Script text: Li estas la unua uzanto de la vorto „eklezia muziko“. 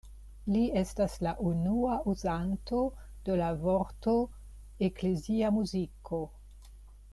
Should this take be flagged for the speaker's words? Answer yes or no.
no